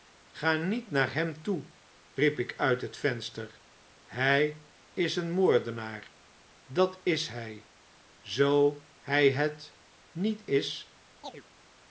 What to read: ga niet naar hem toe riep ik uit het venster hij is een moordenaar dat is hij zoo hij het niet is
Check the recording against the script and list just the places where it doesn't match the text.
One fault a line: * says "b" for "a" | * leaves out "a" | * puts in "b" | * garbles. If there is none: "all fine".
all fine